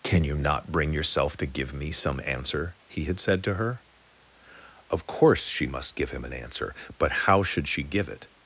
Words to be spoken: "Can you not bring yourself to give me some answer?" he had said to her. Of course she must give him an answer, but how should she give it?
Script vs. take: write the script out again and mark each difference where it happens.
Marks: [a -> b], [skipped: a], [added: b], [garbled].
"Can you not bring yourself to give me some answer?" he had said to her. Of course she must give him an answer, but how should she give it?